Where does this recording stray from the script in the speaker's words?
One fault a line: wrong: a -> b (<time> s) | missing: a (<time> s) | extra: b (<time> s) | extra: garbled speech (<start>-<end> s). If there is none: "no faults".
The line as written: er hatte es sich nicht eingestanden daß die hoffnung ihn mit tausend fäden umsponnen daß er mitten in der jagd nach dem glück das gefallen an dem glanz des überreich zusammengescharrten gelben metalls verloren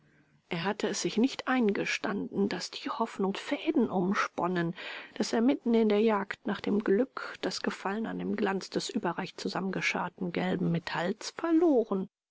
missing: ihn mit tausend (3.4 s)